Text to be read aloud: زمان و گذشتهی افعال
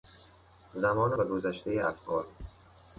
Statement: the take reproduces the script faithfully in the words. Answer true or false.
true